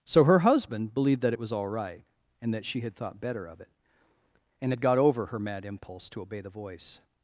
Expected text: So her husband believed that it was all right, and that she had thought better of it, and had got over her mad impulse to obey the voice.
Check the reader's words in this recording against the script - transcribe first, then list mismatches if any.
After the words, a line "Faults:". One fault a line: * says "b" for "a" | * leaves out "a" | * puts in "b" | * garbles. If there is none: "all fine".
So her husband believed that it was all right, and that she had thought better of it, and had got over her mad impulse to obey the voice.
Faults:
all fine